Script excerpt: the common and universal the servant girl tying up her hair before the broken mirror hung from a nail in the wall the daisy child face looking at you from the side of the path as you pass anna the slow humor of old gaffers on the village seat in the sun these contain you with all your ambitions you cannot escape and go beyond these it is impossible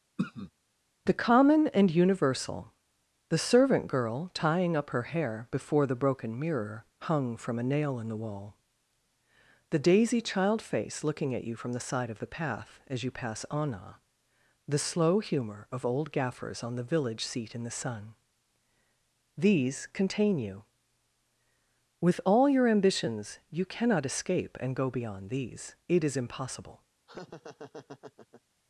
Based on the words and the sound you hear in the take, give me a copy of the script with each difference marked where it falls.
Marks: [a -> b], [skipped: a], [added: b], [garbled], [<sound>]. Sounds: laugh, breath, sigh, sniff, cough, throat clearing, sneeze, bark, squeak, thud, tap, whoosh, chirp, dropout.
[throat clearing] the common and universal the servant girl tying up her hair before the broken mirror hung from a nail in the wall the daisy child face looking at you from the side of the path as you pass anna the slow humor of old gaffers on the village seat in the sun these contain you with all your ambitions you cannot escape and go beyond these it is impossible [laugh]